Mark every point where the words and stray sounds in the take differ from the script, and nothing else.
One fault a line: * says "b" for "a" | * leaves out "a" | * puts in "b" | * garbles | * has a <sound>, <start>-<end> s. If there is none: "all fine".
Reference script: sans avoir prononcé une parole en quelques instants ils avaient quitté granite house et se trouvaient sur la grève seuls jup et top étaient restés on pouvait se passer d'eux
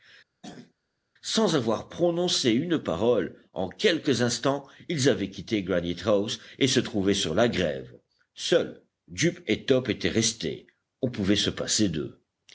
* has a throat clearing, 0.4-0.7 s